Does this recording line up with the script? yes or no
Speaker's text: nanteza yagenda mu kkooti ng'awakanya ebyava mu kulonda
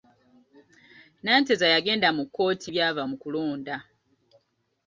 no